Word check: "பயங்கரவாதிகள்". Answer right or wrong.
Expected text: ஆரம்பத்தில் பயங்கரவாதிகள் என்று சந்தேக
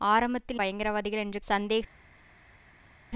right